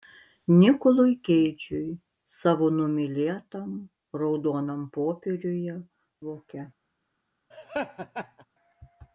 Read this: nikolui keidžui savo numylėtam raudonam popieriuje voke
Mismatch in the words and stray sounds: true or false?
true